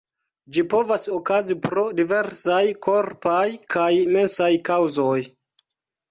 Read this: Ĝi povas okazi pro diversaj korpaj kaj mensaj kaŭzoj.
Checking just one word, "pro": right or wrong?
right